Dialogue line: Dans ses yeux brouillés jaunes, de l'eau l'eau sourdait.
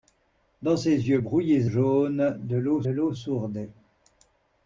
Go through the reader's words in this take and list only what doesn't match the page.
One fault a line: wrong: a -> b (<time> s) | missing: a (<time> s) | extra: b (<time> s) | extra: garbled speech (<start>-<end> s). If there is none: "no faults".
no faults